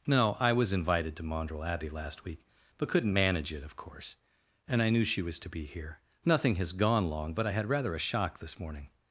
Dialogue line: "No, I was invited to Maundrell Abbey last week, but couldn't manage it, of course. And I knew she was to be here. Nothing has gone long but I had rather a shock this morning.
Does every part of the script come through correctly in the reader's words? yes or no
yes